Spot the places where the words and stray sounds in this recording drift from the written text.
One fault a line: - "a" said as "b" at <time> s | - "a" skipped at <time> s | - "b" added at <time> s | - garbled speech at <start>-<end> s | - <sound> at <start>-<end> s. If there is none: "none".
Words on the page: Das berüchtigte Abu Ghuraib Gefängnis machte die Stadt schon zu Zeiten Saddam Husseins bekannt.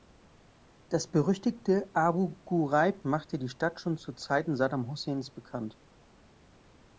- "Gefängnis" skipped at 3.0 s